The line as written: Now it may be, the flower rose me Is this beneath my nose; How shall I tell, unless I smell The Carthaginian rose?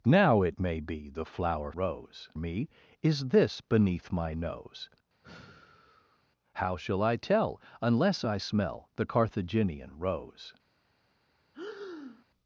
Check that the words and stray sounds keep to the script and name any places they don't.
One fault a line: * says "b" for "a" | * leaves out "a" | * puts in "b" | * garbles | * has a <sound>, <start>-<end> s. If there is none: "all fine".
* has a sigh, 5.2-6.2 s
* has a breath, 11.5-12.3 s